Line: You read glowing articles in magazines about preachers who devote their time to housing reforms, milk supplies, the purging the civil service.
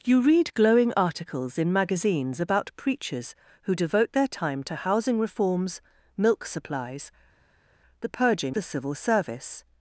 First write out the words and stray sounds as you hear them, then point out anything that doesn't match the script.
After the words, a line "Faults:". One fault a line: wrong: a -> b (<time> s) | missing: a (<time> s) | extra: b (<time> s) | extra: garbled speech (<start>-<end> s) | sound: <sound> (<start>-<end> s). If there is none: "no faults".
You read glowing articles in magazines about preachers who devote their time to housing reforms, milk supplies, the purging the civil service.
Faults:
no faults